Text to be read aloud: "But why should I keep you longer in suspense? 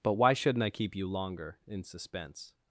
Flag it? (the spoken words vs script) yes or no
yes